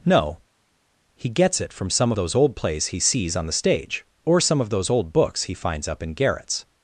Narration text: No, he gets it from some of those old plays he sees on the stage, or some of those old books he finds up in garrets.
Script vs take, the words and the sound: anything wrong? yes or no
yes